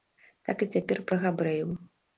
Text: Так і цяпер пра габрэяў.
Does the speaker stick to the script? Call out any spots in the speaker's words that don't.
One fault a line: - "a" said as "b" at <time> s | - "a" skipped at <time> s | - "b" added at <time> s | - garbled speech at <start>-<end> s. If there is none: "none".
none